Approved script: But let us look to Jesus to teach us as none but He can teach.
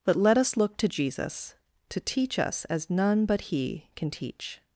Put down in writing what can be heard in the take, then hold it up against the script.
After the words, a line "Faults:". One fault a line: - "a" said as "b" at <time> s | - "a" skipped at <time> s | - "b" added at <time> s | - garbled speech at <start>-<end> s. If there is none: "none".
But let us look to Jesus to teach us as none but He can teach.
Faults:
none